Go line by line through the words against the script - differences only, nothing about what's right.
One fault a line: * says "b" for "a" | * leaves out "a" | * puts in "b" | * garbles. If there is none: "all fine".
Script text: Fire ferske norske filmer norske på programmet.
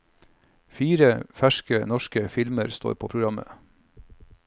* says "står" for "norske"